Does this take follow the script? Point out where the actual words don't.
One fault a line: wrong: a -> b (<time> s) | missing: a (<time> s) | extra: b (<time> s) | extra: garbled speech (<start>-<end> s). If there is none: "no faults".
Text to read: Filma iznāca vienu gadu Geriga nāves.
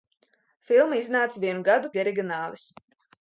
no faults